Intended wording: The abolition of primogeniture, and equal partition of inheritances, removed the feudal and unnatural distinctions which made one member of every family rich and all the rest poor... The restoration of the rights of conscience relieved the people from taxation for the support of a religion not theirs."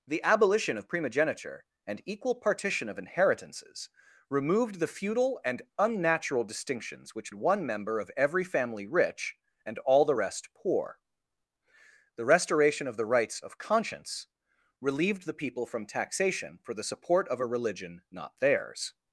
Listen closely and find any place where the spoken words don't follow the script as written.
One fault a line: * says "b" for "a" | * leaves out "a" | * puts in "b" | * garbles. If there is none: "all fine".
* leaves out "made"